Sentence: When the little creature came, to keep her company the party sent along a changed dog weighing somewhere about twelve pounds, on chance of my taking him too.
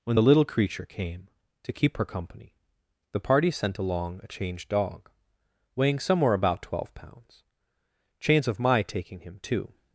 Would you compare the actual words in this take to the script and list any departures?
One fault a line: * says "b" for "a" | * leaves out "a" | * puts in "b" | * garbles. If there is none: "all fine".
* leaves out "on"